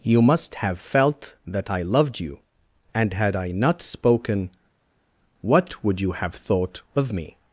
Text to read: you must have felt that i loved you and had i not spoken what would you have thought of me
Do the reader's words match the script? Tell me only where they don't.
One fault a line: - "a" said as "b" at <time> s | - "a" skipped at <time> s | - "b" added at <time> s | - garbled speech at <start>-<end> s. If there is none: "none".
none